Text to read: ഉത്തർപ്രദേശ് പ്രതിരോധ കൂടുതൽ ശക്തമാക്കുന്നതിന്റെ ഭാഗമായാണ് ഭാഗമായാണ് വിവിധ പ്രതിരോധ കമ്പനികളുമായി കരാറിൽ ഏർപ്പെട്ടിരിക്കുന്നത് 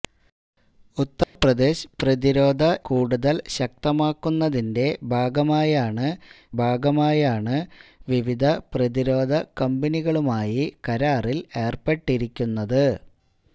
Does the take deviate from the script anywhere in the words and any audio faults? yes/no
yes